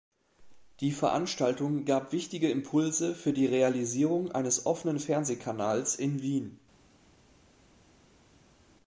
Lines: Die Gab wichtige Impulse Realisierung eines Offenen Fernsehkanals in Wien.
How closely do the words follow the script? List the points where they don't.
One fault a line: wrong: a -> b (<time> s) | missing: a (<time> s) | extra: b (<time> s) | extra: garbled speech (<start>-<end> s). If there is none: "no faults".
extra: Veranstaltung (0.9 s)
extra: für die (3.1 s)